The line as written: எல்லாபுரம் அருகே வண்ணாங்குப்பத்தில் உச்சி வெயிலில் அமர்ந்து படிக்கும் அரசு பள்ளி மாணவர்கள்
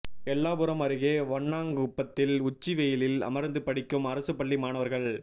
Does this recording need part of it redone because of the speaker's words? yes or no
no